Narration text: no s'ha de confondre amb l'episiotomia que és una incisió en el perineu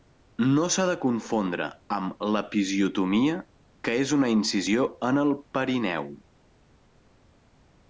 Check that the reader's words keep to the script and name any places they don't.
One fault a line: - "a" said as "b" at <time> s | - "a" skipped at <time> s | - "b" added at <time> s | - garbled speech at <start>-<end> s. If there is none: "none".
none